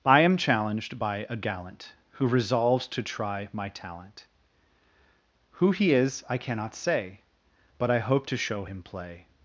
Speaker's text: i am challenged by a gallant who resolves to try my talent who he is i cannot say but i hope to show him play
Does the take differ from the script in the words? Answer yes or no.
no